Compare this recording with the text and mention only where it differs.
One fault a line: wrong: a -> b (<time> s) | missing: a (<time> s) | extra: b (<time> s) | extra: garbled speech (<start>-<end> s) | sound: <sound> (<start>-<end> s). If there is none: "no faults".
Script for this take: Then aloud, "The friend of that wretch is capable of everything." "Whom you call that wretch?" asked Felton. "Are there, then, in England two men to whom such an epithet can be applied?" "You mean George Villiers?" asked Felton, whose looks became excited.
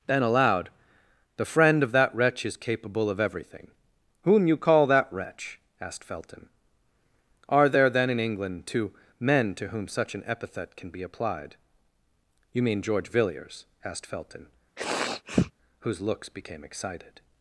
sound: sniff (14.8-15.5 s)